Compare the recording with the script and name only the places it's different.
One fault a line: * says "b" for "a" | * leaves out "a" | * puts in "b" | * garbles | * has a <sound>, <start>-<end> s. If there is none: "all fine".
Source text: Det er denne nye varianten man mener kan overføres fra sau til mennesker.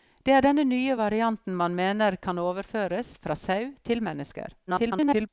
* garbles